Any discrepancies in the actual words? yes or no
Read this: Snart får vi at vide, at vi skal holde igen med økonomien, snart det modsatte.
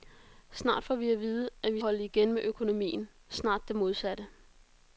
yes